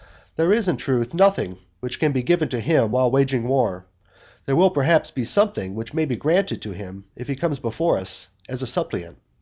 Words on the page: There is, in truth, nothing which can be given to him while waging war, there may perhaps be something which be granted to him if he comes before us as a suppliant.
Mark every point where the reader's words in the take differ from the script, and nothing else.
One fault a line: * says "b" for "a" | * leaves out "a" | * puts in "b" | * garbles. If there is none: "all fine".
* says "will" for "may"
* puts in "may"